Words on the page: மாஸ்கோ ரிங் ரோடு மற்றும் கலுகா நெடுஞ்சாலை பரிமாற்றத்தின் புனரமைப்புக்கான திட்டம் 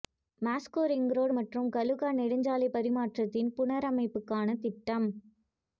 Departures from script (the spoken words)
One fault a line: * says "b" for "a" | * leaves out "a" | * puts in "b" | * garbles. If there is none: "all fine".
all fine